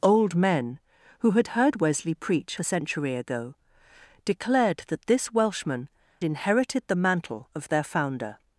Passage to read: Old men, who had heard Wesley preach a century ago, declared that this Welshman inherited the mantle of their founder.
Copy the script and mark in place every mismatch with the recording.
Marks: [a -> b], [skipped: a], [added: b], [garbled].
Old men, who had heard Wesley preach a century ago, declared that this Welshman inherited the mantle of their founder.